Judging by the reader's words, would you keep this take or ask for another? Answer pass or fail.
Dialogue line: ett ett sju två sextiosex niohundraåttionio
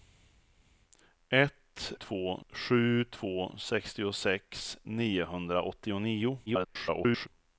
fail